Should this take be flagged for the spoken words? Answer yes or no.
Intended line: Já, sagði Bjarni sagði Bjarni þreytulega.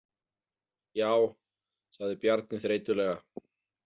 yes